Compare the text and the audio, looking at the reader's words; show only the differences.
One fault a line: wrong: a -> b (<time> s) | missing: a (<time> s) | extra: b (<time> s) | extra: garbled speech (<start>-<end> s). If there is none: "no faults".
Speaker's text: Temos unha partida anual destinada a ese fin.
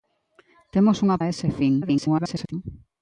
missing: partida anual destinada (1.2 s)
extra: garbled speech (1.8-2.5 s)